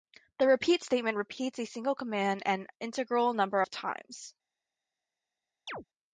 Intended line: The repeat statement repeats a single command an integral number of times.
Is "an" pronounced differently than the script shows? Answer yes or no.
no